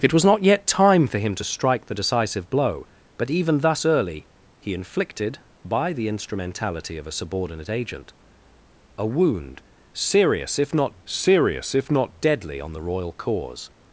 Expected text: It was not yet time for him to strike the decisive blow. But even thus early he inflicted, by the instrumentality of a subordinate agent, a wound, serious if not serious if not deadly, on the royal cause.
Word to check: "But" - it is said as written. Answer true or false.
true